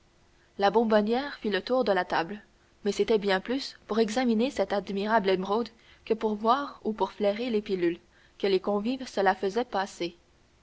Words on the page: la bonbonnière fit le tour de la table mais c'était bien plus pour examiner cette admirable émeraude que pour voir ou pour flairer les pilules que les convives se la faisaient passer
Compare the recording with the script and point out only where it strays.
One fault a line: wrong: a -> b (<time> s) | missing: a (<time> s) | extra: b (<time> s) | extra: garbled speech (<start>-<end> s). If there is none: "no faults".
no faults